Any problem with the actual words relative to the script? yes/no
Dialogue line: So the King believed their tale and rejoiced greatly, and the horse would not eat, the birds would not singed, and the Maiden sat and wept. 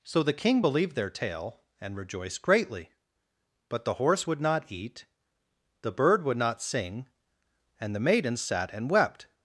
yes